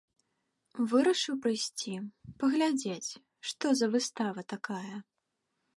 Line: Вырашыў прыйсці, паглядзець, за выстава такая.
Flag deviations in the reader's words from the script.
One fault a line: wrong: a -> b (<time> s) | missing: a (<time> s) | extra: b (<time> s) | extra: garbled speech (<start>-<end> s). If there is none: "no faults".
extra: што (3.5 s)